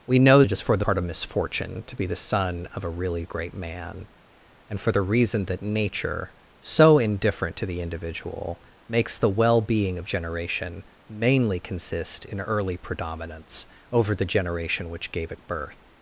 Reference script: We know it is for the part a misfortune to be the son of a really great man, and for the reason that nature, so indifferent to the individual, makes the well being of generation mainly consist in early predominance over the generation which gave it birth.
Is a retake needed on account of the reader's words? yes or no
no